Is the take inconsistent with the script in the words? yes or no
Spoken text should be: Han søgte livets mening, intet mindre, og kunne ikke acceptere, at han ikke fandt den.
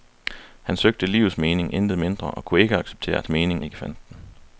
yes